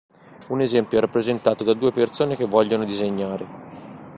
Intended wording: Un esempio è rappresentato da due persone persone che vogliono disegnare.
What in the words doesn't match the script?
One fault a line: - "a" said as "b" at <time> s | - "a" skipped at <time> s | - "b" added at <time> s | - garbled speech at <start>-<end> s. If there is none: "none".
- "persone" skipped at 2.4 s